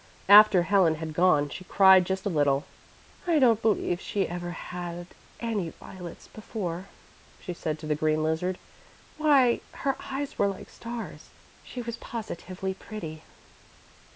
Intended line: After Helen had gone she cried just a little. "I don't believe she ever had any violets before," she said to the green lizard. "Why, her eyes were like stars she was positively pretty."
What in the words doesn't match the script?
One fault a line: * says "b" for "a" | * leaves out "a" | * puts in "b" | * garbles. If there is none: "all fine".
all fine